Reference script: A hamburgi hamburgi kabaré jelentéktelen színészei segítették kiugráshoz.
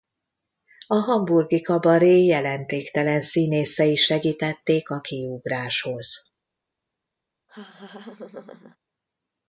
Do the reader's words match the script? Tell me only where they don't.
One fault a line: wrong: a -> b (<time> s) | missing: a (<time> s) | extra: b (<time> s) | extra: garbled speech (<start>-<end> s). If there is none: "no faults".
missing: hamburgi (1.6 s)
extra: a (4.9 s)